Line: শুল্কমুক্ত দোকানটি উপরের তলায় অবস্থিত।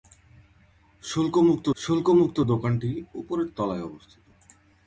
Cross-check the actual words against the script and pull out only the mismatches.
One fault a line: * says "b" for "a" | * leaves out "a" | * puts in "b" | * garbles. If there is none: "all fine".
* puts in "শুল্কমুক্ত"